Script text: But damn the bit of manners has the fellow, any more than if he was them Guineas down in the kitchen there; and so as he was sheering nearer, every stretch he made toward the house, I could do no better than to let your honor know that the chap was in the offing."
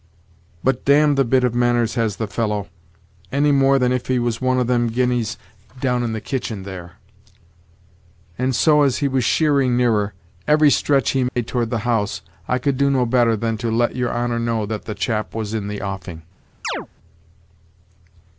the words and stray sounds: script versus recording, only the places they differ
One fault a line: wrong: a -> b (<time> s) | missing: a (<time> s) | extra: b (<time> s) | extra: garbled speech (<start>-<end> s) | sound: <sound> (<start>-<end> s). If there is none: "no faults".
extra: one of (4.4 s)
sound: dropout (11.3-11.4 s)
sound: chirp (16.6-16.9 s)